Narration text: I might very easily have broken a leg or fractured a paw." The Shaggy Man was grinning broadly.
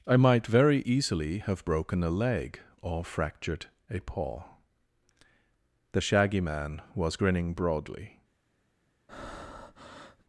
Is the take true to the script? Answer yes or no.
yes